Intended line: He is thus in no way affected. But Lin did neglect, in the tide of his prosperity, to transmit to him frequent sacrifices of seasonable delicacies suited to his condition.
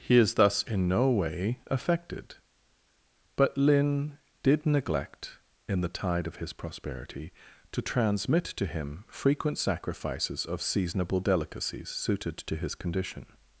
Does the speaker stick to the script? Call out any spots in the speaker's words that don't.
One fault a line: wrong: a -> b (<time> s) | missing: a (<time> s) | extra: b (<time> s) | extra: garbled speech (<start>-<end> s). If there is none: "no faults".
no faults